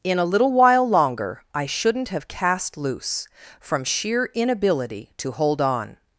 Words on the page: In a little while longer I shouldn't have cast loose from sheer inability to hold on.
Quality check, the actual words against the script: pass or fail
pass